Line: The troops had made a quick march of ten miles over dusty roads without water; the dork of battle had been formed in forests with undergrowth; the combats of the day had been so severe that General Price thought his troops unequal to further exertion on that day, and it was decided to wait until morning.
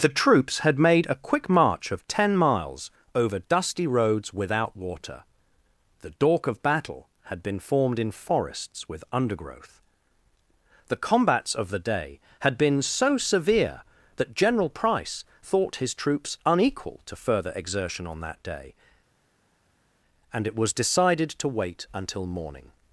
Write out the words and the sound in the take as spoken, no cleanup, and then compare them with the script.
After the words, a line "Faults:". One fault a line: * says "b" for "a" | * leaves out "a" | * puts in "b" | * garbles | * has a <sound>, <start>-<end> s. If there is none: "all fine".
The troops had made a quick march of ten miles over dusty roads without water; the dork of battle had been formed in forests with undergrowth; the combats of the day had been so severe that General Price thought his troops unequal to further exertion on that day, and it was decided to wait until morning.
Faults:
all fine